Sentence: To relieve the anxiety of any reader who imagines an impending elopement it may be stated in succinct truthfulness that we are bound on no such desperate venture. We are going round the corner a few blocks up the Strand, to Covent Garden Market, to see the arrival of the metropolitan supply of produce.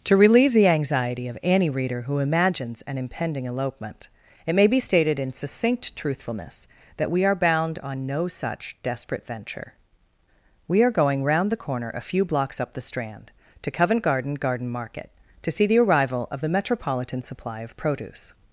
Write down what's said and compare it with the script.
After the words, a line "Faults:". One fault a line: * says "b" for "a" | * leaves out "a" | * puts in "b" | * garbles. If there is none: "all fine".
To relieve the anxiety of any reader who imagines an impending elopement it may be stated in succinct truthfulness that we are bound on no such desperate venture. We are going round the corner a few blocks up the Strand, to Covent Garden Garden Market, to see the arrival of the metropolitan supply of produce.
Faults:
* puts in "Garden"